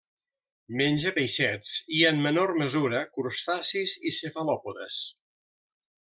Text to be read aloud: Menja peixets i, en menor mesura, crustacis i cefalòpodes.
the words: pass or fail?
pass